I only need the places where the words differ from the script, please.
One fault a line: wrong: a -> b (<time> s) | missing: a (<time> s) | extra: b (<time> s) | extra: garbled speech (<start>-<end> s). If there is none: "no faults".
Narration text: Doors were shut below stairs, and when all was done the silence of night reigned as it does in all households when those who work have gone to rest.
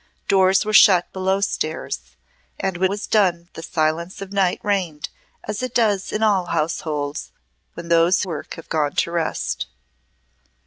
missing: all (2.9 s)
missing: who (8.2 s)